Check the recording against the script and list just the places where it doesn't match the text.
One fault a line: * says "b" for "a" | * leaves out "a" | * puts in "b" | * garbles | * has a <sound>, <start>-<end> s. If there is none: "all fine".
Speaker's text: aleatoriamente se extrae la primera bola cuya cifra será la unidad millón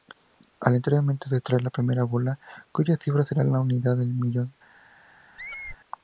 * puts in "del"
* has a squeak, 5.4-5.8 s